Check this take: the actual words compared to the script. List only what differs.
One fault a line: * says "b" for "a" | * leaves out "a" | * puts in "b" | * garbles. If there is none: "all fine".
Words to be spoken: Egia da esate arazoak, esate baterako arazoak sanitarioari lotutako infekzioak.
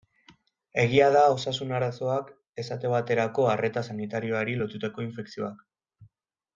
* says "osasun" for "esate"
* says "arreta" for "arazoak"